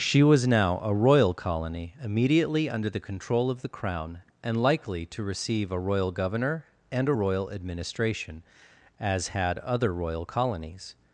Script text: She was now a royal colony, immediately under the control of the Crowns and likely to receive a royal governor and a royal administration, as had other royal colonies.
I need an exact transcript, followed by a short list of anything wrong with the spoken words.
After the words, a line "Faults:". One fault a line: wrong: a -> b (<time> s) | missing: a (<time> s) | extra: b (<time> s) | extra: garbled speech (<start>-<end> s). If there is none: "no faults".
She was now a royal colony, immediately under the control of the Crown and likely to receive a royal governor and a royal administration, as had other royal colonies.
Faults:
wrong: Crowns -> Crown (3.7 s)